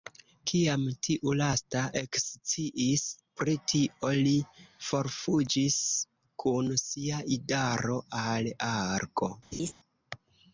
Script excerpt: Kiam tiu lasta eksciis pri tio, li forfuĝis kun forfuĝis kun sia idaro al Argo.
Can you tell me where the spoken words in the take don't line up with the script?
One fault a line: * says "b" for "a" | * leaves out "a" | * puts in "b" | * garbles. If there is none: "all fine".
* leaves out "forfuĝis kun"